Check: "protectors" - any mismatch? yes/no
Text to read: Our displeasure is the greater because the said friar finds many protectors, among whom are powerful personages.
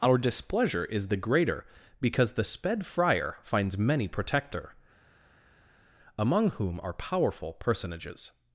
yes